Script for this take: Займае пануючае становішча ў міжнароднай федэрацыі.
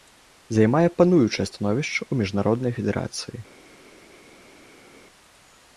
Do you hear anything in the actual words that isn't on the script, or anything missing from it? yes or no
no